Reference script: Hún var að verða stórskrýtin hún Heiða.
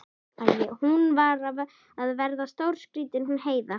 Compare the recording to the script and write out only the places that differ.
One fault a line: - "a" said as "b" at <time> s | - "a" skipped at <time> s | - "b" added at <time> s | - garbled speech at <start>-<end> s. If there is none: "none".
none